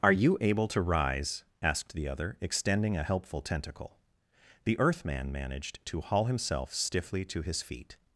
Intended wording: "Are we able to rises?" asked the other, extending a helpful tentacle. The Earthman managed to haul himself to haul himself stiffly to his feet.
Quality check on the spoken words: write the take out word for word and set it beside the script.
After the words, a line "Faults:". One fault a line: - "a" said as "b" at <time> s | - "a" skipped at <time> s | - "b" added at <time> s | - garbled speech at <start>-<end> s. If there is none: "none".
"Are you able to rise?" asked the other, extending a helpful tentacle. The Earthman managed to haul himself stiffly to his feet.
Faults:
- "we" said as "you" at 0.1 s
- "rises" said as "rise" at 0.8 s
- "to haul himself" skipped at 6.7 s